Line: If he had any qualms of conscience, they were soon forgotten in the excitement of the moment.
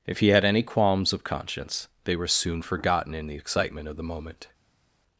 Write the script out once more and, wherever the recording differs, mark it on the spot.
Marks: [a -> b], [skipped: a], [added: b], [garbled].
If he had any qualms of conscience, they were soon forgotten in the excitement of the moment.